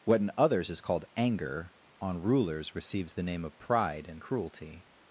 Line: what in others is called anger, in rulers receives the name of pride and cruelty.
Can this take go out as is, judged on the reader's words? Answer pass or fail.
fail